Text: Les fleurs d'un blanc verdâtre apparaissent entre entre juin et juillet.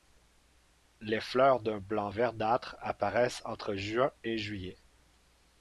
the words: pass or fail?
fail